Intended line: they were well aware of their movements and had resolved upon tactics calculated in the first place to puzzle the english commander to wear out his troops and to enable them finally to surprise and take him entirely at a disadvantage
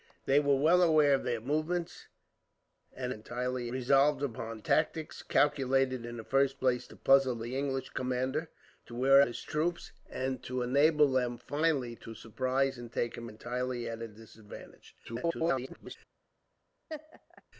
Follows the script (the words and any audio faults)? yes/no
no